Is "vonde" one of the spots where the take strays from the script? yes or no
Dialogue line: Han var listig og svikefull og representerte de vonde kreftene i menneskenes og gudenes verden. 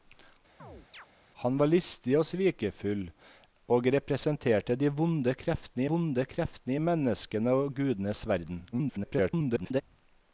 no